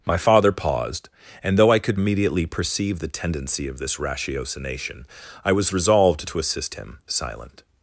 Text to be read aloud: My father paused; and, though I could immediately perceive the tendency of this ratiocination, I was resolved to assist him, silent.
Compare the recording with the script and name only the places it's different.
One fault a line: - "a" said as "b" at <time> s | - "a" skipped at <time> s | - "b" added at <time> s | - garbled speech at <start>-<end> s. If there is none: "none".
none